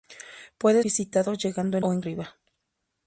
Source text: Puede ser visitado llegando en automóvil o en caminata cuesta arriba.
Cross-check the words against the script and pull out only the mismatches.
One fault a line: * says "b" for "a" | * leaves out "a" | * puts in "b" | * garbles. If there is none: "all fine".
* leaves out "ser"
* leaves out "automóvil"
* leaves out "caminata cuesta"